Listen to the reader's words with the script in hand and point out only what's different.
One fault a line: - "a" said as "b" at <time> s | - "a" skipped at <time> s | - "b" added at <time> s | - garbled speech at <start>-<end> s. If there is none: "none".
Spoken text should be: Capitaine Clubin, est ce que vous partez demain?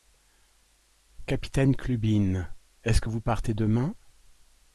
none